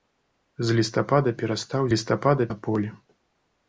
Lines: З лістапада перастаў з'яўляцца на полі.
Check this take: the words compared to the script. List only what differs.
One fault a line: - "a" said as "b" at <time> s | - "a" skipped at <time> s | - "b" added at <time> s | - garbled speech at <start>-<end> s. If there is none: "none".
- "з'яўляцца" said as "лістапада" at 1.9 s